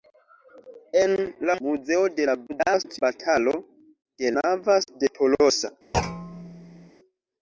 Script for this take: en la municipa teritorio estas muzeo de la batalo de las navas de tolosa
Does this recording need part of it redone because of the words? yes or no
yes